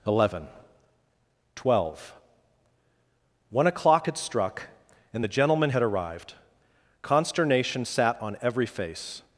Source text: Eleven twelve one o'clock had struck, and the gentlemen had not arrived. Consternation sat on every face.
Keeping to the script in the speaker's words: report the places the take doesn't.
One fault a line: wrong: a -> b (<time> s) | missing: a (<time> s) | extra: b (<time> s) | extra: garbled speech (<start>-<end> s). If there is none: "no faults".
missing: not (5.8 s)